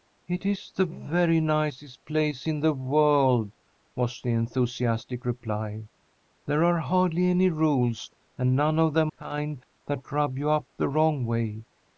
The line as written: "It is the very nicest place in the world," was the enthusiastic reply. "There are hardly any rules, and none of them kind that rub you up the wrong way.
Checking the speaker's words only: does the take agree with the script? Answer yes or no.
yes